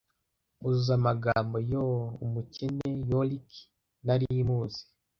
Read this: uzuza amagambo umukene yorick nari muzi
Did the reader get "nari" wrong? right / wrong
right